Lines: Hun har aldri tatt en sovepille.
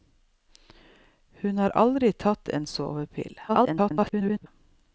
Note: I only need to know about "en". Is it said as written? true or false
true